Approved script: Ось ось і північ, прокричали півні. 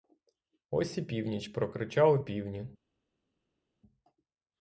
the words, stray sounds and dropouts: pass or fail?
fail